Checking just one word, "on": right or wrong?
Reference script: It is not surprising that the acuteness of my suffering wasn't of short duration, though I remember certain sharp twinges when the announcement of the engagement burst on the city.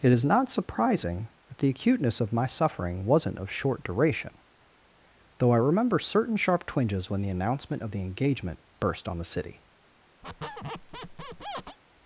right